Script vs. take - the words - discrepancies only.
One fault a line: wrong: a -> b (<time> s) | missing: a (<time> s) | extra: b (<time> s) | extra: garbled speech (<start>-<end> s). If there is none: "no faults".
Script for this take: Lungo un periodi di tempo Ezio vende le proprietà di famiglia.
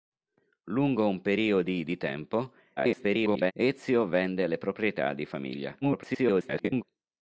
extra: garbled speech (2.8-3.5 s)
extra: garbled speech (5.8-6.8 s)